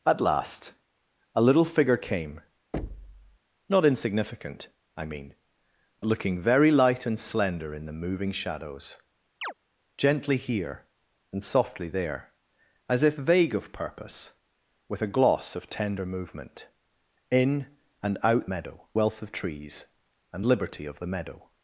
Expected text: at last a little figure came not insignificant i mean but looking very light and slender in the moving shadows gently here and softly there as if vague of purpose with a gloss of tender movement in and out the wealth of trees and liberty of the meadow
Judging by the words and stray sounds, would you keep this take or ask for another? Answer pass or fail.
fail